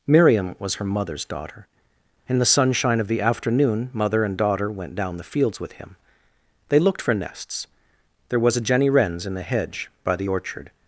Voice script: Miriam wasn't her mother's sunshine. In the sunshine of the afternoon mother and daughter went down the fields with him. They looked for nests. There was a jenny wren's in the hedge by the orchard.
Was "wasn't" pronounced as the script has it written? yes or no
no